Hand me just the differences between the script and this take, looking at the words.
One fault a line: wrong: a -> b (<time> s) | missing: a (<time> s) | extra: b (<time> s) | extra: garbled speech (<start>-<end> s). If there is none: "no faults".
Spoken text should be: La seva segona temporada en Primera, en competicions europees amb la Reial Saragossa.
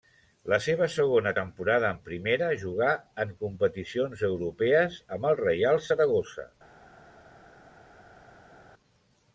extra: jugà (2.6 s)
wrong: la -> el (5.3 s)